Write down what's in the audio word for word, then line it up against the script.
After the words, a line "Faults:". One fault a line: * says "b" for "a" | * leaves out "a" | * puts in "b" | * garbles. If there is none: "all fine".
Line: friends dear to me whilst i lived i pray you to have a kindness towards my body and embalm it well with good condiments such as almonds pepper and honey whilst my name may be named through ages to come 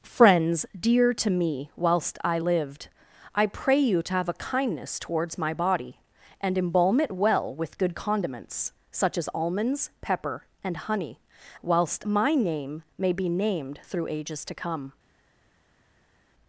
friends dear to me whilst i lived i pray you to have a kindness towards my body and embalm it well with good condiments such as almonds pepper and honey whilst my name may be named through ages to come
Faults:
all fine